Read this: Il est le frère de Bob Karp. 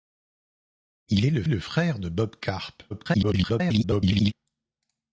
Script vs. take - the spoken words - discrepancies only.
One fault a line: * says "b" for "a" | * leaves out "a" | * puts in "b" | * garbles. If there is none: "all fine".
* puts in "le"
* garbles